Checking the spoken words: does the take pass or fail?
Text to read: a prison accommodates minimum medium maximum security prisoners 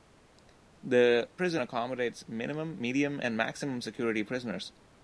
fail